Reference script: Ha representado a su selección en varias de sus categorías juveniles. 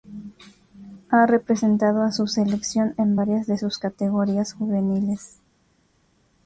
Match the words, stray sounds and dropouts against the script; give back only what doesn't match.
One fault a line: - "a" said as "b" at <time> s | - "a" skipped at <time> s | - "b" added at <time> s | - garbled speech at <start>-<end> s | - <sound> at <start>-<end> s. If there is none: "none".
none